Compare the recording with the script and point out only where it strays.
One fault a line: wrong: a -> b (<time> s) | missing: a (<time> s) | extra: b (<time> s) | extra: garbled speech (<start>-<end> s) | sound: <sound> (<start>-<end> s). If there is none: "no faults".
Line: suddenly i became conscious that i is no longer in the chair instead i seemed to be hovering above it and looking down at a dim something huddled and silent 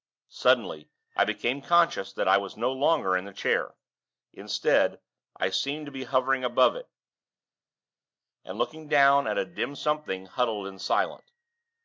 wrong: is -> was (2.4 s)